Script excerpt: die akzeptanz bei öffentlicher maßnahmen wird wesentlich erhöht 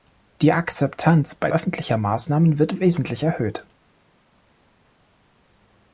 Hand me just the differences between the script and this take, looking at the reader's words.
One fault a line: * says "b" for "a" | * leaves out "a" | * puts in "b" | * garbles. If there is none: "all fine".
all fine